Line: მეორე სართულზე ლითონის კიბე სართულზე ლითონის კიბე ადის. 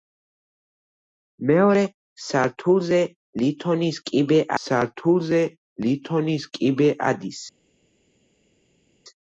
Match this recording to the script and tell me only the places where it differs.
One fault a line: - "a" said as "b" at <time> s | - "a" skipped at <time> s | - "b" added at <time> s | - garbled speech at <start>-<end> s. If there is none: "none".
none